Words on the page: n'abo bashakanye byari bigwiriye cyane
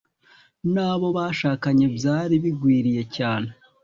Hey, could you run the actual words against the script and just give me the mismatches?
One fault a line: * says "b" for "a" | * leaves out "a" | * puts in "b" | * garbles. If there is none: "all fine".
all fine